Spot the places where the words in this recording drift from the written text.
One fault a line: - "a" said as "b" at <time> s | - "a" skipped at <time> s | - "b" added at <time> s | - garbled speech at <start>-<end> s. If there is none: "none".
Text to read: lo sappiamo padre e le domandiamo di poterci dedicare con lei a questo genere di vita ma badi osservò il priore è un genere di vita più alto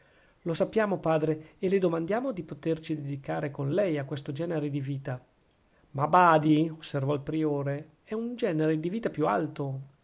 none